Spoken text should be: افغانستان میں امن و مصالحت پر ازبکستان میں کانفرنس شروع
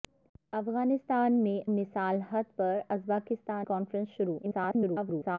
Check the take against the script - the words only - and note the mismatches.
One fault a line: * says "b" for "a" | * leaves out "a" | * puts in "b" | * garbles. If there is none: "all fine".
* leaves out "امن و"
* leaves out "میں"
* garbles